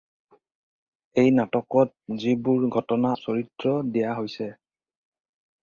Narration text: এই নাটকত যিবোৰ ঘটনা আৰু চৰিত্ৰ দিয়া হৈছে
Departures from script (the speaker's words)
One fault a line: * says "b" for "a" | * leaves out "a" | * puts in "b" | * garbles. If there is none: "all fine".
* leaves out "আৰু"